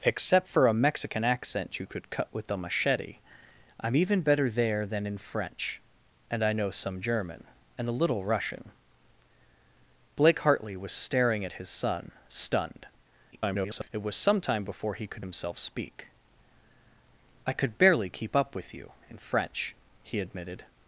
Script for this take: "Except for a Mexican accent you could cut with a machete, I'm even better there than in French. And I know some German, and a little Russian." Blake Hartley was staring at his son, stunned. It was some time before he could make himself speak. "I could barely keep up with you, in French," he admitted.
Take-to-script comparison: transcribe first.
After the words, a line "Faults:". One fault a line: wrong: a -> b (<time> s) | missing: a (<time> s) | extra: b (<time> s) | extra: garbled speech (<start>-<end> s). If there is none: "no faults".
"Except for a Mexican accent you could cut with a machete, I'm even better there than in French. And I know some German, and a little Russian." Blake Hartley was staring at his son, stunned. [garbled] It was some time before he could himself speak. "I could barely keep up with you, in French," he admitted.
Faults:
extra: garbled speech (13.3-13.9 s)
missing: make (15.3 s)